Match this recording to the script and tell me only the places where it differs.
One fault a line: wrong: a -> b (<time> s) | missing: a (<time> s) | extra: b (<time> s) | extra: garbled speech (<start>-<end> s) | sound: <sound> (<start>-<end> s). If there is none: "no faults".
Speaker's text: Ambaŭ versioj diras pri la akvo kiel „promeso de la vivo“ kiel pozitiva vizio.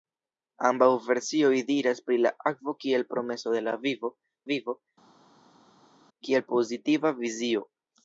extra: vivo (4.5 s)